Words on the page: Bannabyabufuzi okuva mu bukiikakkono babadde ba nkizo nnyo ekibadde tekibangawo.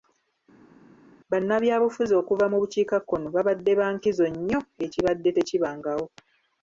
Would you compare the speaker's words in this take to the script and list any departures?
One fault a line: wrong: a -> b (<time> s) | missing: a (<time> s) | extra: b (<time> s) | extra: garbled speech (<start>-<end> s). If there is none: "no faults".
no faults